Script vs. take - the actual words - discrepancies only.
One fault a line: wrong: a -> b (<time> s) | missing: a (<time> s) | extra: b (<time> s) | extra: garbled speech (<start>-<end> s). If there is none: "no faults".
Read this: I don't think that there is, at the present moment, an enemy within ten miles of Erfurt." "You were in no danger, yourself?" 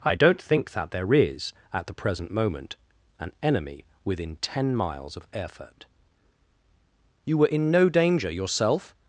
no faults